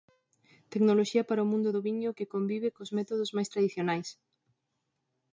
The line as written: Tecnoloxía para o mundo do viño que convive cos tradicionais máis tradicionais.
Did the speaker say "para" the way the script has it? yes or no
yes